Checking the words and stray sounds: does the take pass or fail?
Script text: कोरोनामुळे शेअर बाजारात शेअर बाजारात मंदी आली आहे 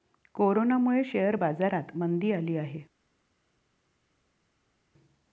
fail